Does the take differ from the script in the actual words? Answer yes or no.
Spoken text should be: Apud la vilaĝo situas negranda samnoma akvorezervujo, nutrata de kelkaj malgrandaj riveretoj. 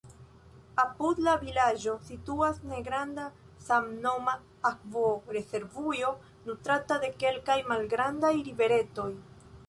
no